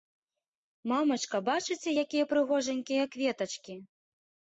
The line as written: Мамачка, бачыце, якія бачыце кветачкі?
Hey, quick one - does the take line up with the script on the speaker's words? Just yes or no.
no